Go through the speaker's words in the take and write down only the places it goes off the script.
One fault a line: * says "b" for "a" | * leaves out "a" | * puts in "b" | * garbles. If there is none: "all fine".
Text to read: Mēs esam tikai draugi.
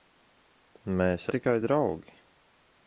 * leaves out "esam"